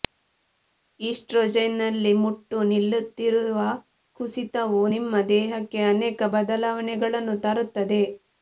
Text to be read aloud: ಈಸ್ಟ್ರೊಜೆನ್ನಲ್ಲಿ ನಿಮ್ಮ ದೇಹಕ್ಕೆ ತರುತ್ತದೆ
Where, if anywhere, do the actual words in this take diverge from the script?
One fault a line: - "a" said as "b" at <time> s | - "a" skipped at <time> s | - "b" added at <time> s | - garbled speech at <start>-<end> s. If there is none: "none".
- "ಮುಟ್ಟು ನಿಲ್ಲುತ್ತಿರುವ ಕುಸಿತವು" added at 2.2 s
- "ಅನೇಕ ಬದಲಾವಣೆಗಳನ್ನು" added at 5.9 s